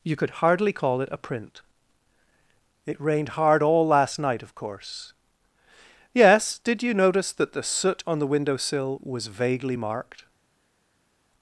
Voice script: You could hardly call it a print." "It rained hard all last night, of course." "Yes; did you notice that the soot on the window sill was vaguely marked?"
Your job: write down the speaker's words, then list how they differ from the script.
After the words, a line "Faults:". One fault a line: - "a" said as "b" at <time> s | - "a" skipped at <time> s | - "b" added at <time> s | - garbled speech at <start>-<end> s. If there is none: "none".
You could hardly call it a print." "It rained hard all last night, of course." "Yes; did you notice that the soot on the window sill was vaguely marked?"
Faults:
none